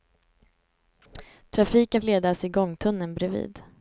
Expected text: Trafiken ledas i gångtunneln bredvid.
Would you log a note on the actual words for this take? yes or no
no